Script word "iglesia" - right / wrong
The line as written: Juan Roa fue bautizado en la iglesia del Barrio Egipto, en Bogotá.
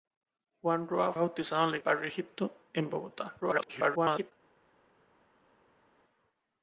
wrong